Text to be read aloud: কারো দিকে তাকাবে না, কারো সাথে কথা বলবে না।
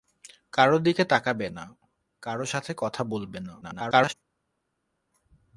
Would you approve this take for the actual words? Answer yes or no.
no